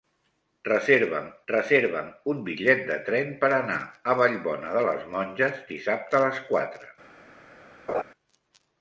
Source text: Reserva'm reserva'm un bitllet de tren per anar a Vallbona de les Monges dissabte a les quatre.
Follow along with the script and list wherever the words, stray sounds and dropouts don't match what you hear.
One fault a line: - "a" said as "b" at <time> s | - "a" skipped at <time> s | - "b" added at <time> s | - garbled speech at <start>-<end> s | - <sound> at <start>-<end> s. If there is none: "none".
- laugh at 7.9-8.0 s